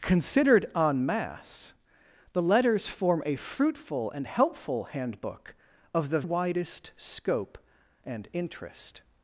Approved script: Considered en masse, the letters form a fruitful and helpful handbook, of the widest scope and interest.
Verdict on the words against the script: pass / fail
pass